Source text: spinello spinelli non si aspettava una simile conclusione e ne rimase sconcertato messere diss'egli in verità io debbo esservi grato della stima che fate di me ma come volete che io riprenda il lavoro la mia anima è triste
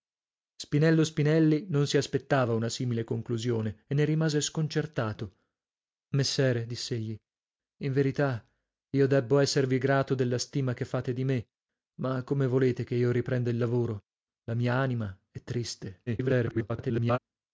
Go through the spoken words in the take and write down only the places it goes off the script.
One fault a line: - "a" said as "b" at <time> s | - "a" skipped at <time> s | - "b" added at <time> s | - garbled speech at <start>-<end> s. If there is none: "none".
- garbled speech at 16.1-17.2 s